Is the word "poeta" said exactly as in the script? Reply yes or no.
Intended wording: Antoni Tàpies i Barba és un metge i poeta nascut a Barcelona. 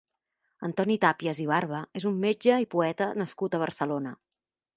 yes